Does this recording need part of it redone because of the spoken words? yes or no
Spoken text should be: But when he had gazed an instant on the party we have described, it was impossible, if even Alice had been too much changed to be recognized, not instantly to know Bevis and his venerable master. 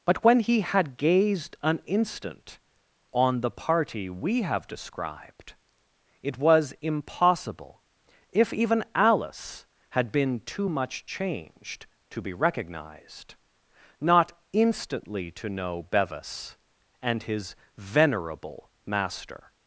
no